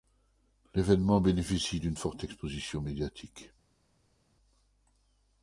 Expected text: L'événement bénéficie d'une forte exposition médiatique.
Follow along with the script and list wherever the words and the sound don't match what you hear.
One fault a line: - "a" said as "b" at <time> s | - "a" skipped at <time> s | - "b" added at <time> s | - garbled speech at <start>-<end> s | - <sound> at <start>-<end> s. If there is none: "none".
none